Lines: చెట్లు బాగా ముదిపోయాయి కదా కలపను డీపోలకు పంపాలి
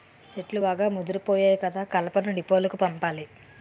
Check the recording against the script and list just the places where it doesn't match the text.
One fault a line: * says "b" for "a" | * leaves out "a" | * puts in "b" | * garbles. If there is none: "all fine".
all fine